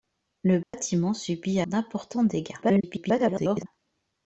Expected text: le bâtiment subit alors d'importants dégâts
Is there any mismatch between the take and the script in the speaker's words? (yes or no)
yes